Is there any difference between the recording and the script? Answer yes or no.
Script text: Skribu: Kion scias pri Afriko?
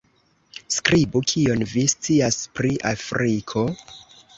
yes